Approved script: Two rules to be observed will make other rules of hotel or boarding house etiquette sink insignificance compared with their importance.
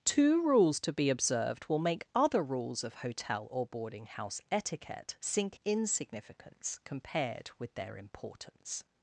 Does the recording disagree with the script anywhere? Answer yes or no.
no